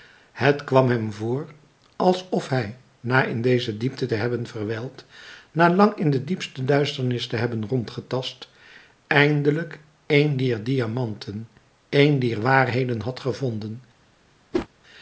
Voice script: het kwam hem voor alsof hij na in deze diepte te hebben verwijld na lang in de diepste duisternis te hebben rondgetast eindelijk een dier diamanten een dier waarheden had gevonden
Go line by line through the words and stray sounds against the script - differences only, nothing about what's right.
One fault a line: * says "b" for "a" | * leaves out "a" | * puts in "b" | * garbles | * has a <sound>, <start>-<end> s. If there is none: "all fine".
* has a whoosh, 14.5-14.7 s